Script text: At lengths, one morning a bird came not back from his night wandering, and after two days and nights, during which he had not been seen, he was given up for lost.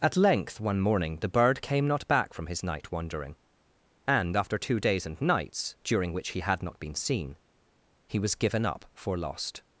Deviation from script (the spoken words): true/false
true